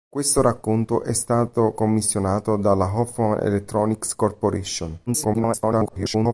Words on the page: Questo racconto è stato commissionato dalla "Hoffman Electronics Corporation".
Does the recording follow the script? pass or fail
fail